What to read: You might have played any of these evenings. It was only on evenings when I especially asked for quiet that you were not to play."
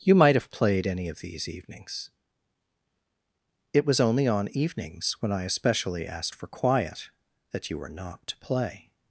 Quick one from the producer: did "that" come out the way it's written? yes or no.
yes